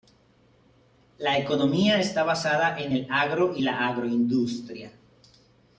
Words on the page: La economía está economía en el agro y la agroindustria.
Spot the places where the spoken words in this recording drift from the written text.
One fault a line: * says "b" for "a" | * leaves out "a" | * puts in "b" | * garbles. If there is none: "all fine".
* says "basada" for "economía"